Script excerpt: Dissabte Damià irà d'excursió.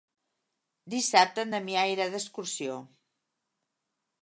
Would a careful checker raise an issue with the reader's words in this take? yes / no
yes